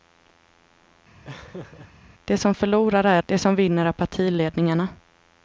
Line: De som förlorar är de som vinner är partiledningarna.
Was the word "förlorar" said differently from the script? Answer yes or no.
no